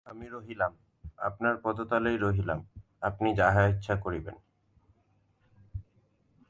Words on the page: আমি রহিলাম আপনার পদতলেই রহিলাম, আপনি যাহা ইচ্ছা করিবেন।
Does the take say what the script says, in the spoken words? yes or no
yes